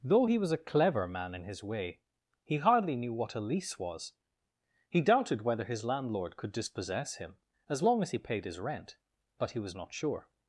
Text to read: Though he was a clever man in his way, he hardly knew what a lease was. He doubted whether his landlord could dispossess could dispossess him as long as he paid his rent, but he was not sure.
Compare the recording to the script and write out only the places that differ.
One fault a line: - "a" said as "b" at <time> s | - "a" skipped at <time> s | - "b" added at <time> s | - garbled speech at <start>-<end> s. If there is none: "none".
- "could dispossess" skipped at 7.2 s